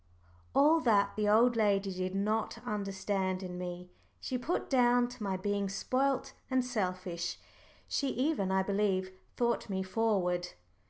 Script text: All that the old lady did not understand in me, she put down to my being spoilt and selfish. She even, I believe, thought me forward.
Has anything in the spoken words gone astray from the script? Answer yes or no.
no